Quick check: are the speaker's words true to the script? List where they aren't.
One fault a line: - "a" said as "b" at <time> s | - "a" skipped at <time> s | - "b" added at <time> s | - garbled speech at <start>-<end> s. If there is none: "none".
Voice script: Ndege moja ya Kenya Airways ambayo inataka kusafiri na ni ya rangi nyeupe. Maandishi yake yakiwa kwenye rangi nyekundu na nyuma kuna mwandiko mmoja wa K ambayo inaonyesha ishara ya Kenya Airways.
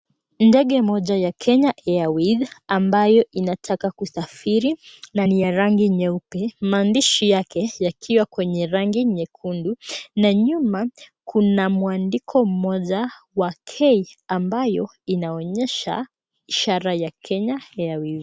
none